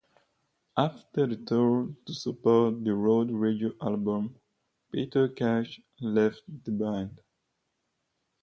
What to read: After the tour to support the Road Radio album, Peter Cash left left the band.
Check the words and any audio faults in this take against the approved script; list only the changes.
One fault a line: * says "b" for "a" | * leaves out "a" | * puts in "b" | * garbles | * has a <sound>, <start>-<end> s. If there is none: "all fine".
* leaves out "left"